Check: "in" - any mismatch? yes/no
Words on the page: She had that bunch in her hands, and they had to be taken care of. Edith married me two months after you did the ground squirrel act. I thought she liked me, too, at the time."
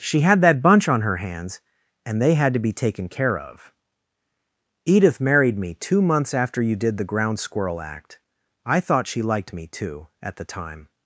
yes